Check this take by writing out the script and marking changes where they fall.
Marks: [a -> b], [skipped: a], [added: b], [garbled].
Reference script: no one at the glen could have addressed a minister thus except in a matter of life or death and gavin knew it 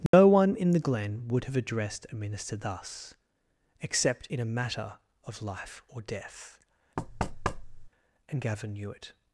no one [at -> in] the glen [could -> would] have addressed a minister thus except in a matter of life or death and gavin knew it